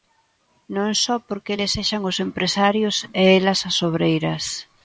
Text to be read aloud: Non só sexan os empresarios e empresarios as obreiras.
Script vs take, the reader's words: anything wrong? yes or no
yes